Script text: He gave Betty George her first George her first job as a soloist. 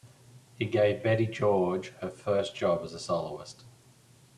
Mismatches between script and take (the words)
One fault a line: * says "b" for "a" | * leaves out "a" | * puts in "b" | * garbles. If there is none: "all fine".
* leaves out "George her first"